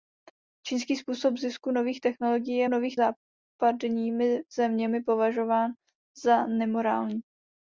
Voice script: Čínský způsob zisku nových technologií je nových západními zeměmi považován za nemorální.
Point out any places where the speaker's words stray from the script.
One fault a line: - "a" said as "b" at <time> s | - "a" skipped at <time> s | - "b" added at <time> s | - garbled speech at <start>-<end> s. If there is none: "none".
none